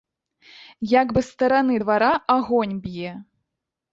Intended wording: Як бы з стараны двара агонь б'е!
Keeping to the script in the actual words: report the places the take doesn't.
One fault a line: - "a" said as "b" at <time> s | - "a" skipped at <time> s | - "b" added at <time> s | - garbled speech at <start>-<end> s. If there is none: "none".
none